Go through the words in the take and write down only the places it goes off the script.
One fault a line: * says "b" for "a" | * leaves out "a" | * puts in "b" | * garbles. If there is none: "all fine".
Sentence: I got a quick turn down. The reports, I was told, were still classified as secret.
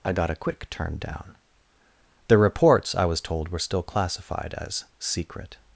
all fine